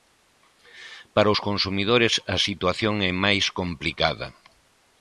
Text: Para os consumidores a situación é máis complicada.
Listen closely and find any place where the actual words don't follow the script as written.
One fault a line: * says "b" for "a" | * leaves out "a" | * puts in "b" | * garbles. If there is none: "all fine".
all fine